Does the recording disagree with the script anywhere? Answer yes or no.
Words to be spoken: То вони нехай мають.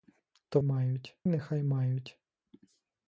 yes